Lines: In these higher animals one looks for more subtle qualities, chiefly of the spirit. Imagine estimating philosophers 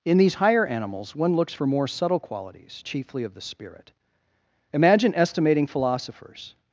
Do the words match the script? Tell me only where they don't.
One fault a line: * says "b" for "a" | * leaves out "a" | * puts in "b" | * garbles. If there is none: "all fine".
all fine